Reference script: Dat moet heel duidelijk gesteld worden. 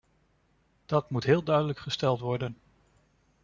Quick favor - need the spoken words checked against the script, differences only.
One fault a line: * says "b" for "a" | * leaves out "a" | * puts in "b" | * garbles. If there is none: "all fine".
all fine